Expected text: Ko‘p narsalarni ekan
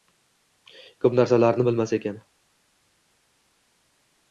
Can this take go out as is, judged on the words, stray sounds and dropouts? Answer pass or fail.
fail